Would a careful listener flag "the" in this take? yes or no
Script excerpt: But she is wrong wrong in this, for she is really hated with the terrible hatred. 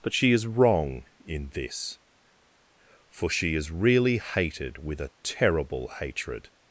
yes